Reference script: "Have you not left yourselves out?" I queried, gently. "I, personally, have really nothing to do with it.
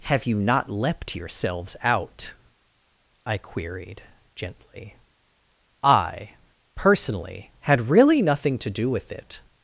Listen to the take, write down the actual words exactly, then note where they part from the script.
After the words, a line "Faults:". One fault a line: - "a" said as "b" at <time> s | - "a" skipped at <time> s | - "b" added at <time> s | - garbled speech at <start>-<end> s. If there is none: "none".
"Have you not leapt yourselves out?" I queried, gently. "I, personally, had really nothing to do with it.
Faults:
- "left" said as "leapt" at 0.7 s
- "have" said as "had" at 7.6 s